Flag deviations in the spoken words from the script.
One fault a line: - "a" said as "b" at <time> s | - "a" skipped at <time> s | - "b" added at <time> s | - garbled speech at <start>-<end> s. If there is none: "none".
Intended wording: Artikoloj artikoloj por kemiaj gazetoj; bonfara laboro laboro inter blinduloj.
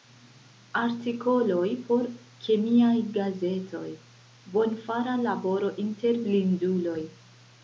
- "artikoloj" skipped at 1.7 s
- "laboro" skipped at 5.7 s